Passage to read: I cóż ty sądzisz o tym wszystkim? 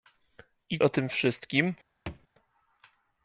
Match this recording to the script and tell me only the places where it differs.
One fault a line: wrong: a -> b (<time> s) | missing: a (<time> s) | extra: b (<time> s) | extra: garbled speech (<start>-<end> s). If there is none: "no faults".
missing: cóż ty sądzisz (0.8 s)